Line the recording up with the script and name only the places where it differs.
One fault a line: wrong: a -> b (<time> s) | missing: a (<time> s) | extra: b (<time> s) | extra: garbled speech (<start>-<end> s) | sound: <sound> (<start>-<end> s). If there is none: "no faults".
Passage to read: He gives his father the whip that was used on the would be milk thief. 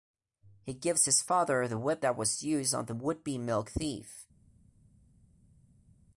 no faults